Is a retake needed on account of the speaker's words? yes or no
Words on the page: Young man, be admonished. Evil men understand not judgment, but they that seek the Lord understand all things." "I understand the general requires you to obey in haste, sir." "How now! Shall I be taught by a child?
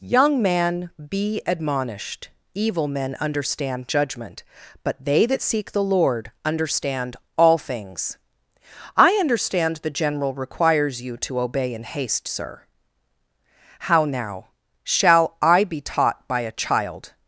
yes